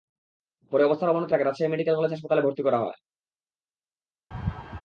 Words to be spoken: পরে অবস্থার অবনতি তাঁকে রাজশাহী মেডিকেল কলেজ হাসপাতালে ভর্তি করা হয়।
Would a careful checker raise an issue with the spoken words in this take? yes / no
no